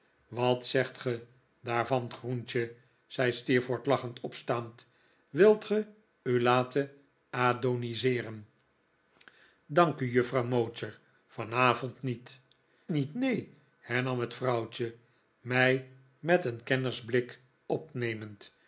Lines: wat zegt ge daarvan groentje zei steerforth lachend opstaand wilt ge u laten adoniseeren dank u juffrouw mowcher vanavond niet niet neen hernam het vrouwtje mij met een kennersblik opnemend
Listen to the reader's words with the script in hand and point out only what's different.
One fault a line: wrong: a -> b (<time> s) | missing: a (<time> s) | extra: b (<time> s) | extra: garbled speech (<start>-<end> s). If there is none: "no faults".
no faults